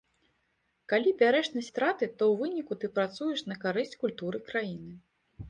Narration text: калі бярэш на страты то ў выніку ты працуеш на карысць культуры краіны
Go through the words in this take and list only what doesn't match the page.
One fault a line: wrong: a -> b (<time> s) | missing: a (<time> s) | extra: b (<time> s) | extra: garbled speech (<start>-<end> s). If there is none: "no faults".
no faults